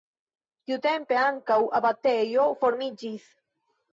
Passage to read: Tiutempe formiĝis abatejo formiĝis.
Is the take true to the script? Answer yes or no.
no